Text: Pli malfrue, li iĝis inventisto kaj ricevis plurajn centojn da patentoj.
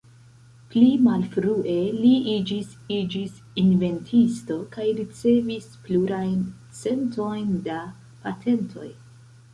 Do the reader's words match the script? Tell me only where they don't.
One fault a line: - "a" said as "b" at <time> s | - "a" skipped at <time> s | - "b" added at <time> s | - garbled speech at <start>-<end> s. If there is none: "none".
- "iĝis" added at 3.0 s